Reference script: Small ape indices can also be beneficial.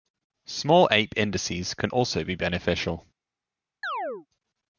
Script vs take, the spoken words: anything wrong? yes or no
no